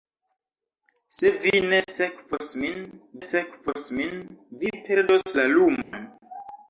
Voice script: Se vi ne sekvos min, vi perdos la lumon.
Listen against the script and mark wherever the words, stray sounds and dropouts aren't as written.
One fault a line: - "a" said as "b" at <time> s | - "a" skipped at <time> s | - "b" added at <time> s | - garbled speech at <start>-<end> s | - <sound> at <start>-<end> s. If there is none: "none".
- "sekvos min" added at 3.3 s
- dropout at 5.8-5.9 s